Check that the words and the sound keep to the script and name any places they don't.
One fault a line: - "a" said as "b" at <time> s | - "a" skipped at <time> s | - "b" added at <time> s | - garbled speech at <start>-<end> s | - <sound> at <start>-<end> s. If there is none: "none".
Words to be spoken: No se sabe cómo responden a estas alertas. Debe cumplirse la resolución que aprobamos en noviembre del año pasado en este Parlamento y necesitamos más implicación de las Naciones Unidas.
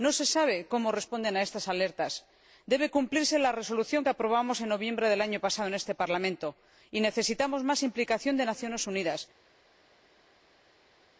none